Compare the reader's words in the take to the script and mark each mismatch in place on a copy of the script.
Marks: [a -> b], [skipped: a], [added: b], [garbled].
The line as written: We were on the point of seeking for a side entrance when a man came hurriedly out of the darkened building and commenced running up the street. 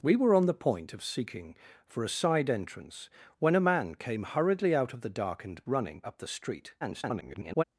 We were on the point of seeking for a side entrance when a man came hurriedly out of the darkened [skipped: building and commenced] running up the street. [garbled]